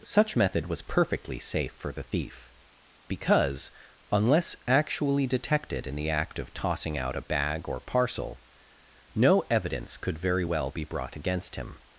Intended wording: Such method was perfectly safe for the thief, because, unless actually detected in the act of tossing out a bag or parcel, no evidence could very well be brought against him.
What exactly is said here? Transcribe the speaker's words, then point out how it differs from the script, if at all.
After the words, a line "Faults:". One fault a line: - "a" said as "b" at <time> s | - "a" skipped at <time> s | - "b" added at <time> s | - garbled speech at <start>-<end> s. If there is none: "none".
Such method was perfectly safe for the thief, because, unless actually detected in the act of tossing out a bag or parcel, no evidence could very well be brought against him.
Faults:
none